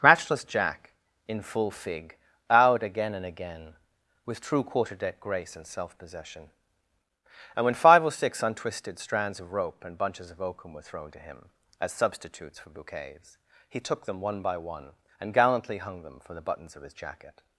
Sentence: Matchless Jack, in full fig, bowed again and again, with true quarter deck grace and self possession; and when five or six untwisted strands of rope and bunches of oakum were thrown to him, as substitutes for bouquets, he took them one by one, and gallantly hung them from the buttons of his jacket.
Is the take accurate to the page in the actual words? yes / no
no